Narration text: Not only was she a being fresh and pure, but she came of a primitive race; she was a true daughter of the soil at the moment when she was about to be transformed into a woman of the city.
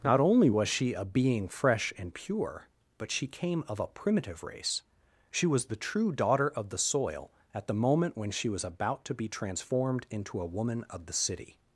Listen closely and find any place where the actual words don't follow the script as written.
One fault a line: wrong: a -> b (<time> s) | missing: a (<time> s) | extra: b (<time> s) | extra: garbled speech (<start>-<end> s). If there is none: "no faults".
wrong: a -> the (5.7 s)